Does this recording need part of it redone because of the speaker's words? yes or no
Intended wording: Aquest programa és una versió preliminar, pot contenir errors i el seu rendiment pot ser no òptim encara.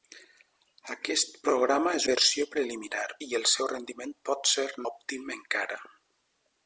yes